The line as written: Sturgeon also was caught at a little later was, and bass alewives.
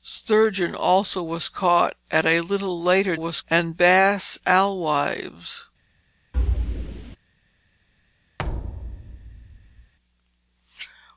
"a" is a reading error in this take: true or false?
false